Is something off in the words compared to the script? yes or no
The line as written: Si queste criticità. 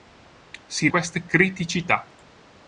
no